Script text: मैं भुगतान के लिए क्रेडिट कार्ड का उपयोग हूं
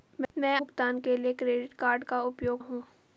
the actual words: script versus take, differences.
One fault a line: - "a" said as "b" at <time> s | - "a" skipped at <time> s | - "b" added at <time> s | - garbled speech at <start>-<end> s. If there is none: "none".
none